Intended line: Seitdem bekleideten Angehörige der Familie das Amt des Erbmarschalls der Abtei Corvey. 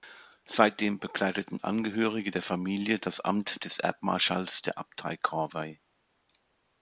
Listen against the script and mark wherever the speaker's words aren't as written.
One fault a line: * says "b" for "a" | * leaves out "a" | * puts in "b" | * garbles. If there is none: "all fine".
all fine